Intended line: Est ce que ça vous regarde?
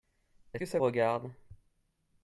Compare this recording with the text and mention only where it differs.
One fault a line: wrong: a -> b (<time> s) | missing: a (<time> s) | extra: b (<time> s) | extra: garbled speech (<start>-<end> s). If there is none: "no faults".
missing: ce (0.6 s)
missing: vous (0.8 s)